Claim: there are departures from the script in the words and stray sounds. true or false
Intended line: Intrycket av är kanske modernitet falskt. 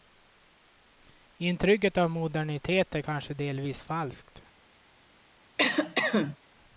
true